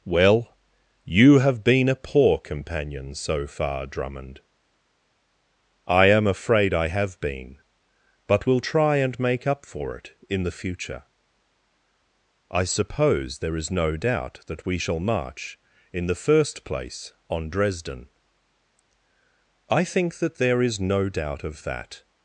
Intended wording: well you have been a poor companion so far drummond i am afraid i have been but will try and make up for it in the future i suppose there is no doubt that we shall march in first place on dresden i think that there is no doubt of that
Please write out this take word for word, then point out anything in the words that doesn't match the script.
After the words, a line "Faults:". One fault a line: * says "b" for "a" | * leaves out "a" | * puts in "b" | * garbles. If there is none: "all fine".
well you have been a poor companion so far drummond i am afraid i have been but will try and make up for it in the future i suppose there is no doubt that we shall march in the first place on dresden i think that there is no doubt of that
Faults:
* puts in "the"